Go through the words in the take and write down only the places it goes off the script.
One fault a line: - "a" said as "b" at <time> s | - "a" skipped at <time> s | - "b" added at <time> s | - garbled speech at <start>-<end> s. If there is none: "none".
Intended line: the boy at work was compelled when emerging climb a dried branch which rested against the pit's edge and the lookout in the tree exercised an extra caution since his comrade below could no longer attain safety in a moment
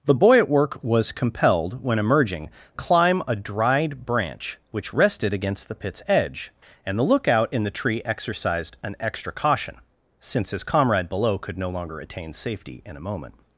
none